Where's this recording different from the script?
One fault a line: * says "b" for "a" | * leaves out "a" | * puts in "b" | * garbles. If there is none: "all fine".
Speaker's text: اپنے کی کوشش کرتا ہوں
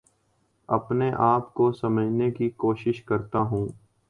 * puts in "آپ کو سمجھنے"